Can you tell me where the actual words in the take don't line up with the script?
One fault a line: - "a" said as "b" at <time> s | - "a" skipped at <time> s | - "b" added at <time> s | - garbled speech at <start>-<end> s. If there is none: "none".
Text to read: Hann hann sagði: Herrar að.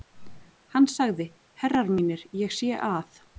- "hann" skipped at 0.9 s
- "mínir ég sé" added at 2.0 s